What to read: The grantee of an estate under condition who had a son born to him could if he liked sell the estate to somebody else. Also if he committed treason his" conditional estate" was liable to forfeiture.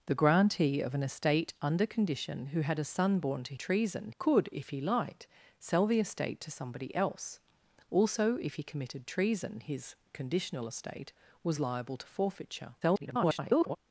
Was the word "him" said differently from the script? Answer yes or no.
yes